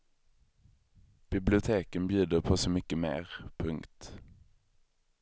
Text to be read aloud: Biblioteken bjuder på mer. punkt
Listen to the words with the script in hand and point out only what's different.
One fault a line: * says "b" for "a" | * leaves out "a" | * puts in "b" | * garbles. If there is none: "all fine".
* puts in "så mycket"